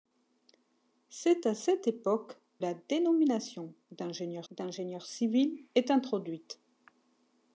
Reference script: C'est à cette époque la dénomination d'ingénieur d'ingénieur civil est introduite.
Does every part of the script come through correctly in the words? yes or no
yes